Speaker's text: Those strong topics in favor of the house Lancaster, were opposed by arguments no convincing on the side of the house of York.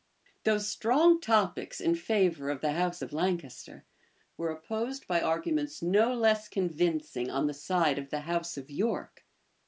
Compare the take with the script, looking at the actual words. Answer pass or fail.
fail